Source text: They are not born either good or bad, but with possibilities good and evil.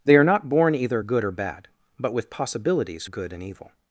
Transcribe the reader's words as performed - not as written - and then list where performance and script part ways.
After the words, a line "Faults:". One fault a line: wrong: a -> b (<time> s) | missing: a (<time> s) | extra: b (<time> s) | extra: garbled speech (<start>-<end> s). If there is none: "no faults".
They are not born either good or bad, but with possibilities good and evil.
Faults:
no faults